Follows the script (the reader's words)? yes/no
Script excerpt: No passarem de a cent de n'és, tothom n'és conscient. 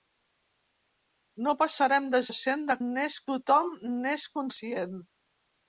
yes